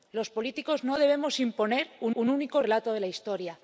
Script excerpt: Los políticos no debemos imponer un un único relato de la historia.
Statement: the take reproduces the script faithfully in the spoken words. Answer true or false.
true